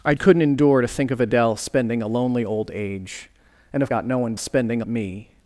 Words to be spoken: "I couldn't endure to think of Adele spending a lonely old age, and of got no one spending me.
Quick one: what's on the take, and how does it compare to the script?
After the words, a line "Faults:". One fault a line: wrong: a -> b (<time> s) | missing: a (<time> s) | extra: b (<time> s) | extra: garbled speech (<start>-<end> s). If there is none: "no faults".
"I couldn't endure to think of Adele spending a lonely old age, and of got no one spending me.
Faults:
no faults